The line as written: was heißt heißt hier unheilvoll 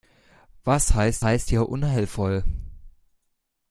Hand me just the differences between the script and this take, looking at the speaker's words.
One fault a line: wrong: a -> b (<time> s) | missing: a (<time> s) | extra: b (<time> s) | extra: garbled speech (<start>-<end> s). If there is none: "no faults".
no faults